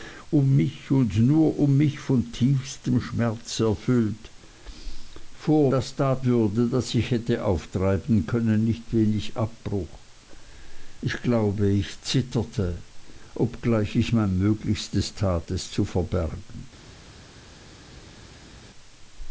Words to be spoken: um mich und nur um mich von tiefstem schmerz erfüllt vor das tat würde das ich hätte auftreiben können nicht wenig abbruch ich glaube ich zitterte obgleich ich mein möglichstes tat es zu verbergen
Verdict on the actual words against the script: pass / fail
pass